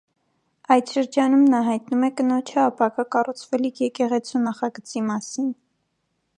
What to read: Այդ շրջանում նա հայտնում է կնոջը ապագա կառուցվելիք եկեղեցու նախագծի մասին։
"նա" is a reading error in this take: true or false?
false